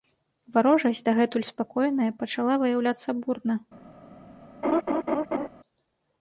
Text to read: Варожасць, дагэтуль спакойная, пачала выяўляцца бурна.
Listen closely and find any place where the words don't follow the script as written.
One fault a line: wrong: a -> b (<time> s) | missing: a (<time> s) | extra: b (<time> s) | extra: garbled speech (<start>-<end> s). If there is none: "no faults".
no faults